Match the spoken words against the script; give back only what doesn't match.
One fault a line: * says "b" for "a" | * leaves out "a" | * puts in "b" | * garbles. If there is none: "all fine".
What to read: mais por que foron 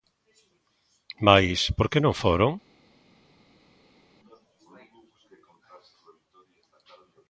* puts in "non"